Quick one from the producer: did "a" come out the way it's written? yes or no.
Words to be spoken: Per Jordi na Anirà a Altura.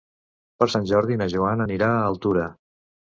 yes